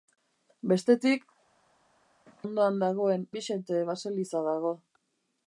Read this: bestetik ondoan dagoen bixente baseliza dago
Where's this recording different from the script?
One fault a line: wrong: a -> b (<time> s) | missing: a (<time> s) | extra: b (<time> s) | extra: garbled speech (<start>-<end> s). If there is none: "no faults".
no faults